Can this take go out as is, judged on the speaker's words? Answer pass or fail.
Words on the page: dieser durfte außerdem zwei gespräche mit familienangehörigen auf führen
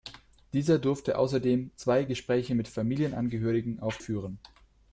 pass